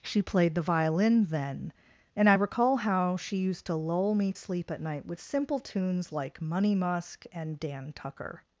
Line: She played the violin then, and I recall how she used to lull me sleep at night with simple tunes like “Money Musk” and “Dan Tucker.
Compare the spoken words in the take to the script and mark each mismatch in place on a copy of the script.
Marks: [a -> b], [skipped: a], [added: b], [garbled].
She played the violin then, and I recall how she used to lull me sleep at night with simple tunes like “Money Musk” and “Dan Tucker.